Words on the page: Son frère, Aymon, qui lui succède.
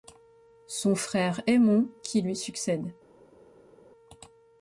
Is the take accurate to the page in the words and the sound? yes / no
yes